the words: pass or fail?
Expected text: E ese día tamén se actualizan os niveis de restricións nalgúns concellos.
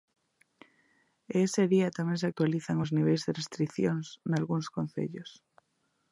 pass